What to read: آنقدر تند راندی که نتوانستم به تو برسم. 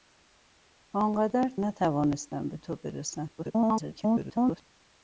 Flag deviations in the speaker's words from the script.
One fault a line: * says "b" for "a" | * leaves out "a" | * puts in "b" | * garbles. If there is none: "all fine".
* leaves out "تند راندی که"
* garbles